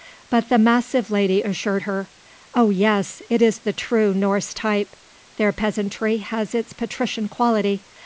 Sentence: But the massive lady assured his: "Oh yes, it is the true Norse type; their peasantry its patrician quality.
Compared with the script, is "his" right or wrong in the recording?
wrong